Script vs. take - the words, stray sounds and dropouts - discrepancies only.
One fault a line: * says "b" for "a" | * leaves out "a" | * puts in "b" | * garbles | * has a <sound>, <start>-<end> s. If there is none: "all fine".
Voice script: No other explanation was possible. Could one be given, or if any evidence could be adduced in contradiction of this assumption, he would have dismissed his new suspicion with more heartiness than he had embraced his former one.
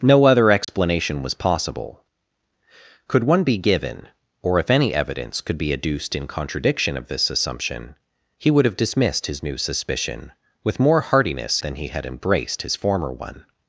* has a dropout, 0.6-0.7 s